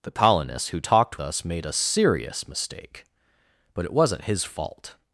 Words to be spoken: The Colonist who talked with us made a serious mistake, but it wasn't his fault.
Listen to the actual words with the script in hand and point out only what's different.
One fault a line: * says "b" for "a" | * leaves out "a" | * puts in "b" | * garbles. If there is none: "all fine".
* leaves out "with"